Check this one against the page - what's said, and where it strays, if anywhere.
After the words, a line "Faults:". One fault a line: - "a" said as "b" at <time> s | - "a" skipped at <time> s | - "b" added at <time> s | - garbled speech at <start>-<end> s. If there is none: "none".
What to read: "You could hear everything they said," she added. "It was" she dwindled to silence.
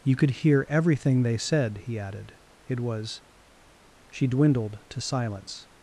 "You could hear everything they said," he added. "It was" she dwindled to silence.
Faults:
- "she" said as "he" at 1.9 s